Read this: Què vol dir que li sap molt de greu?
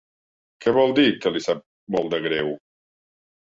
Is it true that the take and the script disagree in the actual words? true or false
false